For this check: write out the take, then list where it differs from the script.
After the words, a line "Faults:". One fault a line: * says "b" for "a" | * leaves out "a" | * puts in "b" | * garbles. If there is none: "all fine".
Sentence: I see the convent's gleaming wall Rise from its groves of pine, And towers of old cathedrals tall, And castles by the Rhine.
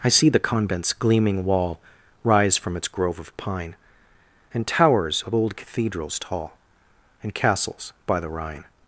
I see the convent's gleaming wall Rise from its grove of pine, And towers of old cathedrals tall, And castles by the Rhine.
Faults:
* says "grove" for "groves"